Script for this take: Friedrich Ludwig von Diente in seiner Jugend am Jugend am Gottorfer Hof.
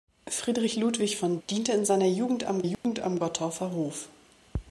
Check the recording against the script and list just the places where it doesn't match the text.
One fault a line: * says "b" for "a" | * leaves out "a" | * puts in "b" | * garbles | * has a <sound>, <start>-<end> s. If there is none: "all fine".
* has a dropout, 2.7-2.8 s